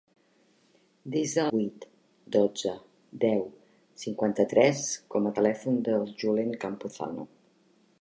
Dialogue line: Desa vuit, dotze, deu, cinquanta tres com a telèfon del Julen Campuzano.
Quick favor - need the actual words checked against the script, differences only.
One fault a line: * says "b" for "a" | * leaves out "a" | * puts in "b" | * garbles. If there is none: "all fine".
all fine